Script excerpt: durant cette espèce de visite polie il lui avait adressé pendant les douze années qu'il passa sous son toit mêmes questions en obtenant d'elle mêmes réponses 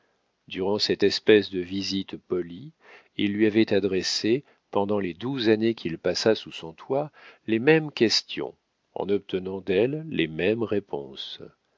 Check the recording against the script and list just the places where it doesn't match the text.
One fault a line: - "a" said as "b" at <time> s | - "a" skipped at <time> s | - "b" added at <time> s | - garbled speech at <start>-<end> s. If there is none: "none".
- "les" added at 7.5 s
- "les" added at 10.1 s